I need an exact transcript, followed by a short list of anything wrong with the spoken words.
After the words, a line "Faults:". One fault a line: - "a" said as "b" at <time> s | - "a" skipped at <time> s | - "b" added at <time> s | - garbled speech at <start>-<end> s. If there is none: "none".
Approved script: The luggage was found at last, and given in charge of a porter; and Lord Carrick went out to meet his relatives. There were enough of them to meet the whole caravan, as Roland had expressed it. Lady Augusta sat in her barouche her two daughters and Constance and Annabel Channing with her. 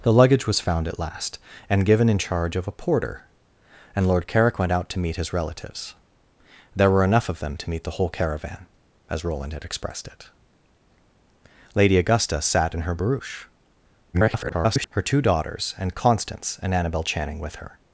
The luggage was found at last, and given in charge of a porter; and Lord Carrick went out to meet his relatives. There were enough of them to meet the whole caravan, as Roland had expressed it. Lady Augusta sat in her barouche [garbled] her two daughters and Constance and Annabel Channing with her.
Faults:
- garbled speech at 14.1-14.9 s